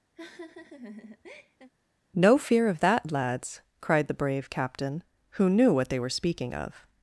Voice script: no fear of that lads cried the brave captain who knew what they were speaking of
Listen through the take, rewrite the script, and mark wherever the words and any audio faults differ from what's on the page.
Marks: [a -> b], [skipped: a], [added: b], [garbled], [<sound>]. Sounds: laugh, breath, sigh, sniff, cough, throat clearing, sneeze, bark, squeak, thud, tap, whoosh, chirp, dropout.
[laugh] no fear of that lads cried the brave captain who knew what they were speaking of